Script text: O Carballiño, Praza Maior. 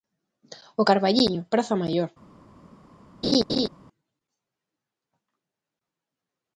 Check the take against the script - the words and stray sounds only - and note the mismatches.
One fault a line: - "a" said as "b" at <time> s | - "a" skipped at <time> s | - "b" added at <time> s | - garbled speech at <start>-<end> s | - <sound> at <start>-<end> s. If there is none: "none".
- laugh at 3.2-3.7 s